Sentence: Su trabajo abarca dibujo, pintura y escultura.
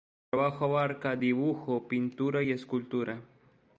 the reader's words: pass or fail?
pass